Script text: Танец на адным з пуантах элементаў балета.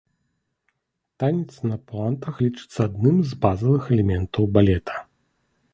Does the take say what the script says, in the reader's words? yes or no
no